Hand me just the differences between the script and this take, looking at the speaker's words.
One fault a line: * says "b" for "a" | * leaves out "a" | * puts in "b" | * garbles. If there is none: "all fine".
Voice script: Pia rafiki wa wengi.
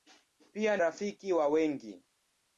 all fine